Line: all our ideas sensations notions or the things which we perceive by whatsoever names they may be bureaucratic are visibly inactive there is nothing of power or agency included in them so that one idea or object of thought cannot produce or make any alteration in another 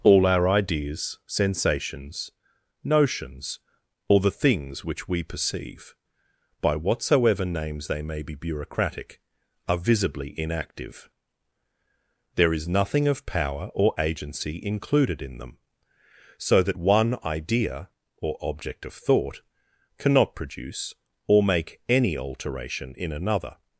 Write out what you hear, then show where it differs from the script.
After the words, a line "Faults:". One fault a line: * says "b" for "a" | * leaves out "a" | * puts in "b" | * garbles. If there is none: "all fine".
all our ideas sensations notions or the things which we perceive by whatsoever names they may be bureaucratic are visibly inactive there is nothing of power or agency included in them so that one idea or object of thought cannot produce or make any alteration in another
Faults:
all fine